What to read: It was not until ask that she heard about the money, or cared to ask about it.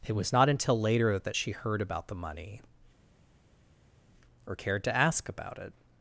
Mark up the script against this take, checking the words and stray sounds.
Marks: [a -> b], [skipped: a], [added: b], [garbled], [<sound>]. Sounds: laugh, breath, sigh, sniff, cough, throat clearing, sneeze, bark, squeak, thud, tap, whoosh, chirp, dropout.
It was not until [ask -> later] that she heard about the money, or cared to ask about it.